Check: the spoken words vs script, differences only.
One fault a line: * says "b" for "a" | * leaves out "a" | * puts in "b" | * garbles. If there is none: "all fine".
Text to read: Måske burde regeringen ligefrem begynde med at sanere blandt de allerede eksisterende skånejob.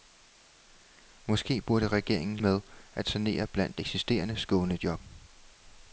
* leaves out "ligefrem begynde"
* leaves out "de allerede"